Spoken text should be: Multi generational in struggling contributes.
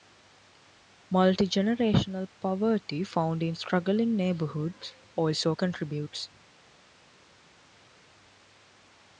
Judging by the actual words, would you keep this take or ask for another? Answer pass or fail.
fail